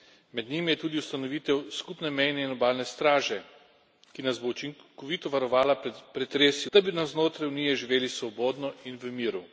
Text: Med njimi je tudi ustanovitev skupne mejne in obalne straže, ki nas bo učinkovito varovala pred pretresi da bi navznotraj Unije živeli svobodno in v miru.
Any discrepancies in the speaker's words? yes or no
no